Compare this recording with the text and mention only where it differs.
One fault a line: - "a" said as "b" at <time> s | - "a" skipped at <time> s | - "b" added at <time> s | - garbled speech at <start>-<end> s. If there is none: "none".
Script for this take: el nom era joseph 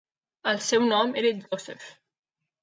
- "seu" added at 0.7 s